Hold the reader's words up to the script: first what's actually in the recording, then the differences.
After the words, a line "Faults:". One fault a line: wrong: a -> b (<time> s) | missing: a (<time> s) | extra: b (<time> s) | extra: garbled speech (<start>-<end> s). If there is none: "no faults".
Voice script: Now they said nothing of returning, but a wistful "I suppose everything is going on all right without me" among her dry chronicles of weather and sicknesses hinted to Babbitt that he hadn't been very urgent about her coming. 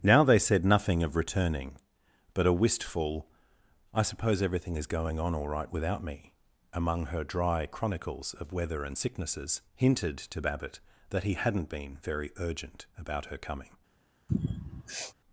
Now they said nothing of returning, but a wistful "I suppose everything is going on all right without me" among her dry chronicles of weather and sicknesses hinted to Babbitt that he hadn't been very urgent about her coming.
Faults:
no faults